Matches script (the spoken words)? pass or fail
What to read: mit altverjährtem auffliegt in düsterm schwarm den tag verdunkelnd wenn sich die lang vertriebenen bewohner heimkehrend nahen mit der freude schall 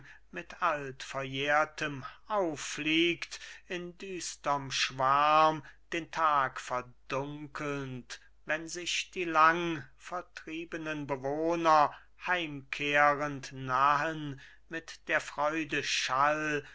pass